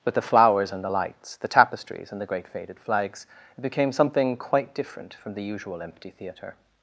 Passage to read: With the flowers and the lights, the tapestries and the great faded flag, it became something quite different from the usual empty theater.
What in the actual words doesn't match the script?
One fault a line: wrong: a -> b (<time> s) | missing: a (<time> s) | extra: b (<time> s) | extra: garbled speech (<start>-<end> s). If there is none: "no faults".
wrong: flag -> flags (2.8 s)